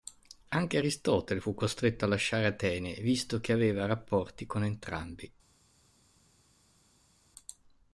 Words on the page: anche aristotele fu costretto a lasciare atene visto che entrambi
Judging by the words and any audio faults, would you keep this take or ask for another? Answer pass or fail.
fail